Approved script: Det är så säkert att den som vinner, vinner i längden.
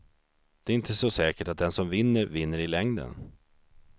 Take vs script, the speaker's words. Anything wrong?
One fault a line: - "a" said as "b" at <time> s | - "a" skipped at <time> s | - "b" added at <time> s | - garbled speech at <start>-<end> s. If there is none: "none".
- "inte" added at 0.8 s